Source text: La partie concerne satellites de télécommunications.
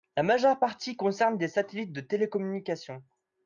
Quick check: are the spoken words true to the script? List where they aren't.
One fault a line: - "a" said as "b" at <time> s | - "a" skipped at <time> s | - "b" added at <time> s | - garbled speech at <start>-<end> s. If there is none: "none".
- "majeure" added at 0.2 s
- "des" added at 1.4 s